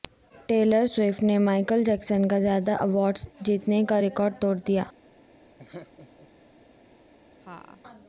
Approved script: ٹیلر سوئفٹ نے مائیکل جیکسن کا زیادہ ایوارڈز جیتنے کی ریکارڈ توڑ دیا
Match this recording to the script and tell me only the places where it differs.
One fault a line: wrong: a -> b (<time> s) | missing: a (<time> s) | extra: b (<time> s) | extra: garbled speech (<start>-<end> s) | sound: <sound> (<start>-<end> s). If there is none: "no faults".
wrong: کی -> کا (3.8 s)
sound: laugh (5.6-6.3 s)
sound: laugh (7.4-7.8 s)